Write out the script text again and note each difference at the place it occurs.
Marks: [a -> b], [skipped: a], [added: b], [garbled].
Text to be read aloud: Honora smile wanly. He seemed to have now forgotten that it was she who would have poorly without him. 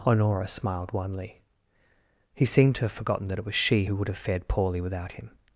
Honora [smile -> smiled] wanly. He seemed to have [skipped: now] forgotten that it was she who would have [added: fared] poorly without him.